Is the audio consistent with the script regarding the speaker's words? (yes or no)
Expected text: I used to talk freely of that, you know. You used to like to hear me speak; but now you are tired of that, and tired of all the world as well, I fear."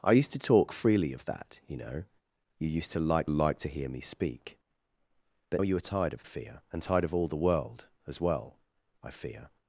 no